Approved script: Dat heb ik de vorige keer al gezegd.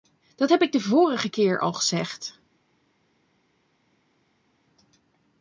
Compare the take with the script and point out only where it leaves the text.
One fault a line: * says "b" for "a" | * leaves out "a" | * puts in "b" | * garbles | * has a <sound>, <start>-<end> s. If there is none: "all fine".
all fine